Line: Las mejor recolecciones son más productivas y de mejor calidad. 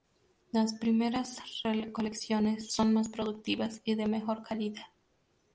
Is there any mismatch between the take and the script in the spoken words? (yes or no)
yes